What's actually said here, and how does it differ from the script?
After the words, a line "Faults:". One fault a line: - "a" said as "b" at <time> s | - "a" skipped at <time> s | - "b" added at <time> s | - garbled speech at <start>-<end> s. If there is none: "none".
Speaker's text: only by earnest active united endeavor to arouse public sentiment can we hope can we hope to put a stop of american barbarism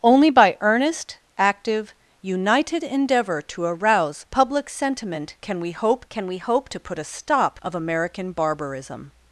only by earnest active united endeavor to arouse public sentiment can we hope can we hope to put a stop of american barbarism
Faults:
none